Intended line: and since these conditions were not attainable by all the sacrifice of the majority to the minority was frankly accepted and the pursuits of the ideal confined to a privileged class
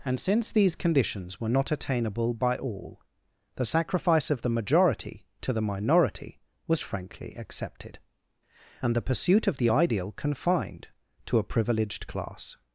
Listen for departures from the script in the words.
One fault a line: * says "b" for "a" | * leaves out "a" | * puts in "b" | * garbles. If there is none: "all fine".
* says "pursuit" for "pursuits"